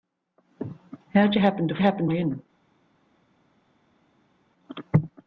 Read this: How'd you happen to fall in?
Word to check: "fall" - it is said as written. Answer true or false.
false